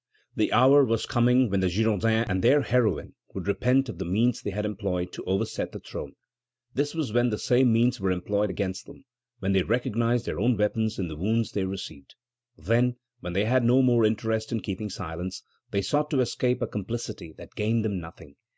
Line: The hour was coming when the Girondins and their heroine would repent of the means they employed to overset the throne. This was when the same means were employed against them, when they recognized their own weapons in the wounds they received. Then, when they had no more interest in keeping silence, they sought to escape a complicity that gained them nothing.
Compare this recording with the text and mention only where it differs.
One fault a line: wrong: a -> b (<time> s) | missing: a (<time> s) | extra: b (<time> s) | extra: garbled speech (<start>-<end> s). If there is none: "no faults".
extra: had (4.5 s)